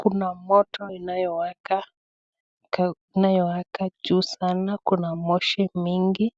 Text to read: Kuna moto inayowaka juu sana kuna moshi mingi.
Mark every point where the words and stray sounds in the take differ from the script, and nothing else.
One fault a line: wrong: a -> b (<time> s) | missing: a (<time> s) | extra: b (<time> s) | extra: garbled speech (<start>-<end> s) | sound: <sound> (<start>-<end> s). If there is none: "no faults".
no faults